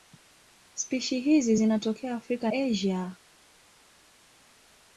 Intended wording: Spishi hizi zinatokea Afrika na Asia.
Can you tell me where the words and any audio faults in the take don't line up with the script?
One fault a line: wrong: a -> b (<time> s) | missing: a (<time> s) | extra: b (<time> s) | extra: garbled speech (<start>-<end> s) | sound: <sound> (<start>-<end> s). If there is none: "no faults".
missing: na (2.5 s)